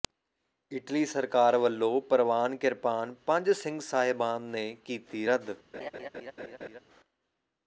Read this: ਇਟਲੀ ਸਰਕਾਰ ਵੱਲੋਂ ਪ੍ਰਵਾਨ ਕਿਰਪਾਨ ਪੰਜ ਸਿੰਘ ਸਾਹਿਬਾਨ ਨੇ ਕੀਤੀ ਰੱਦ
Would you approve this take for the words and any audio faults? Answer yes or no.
no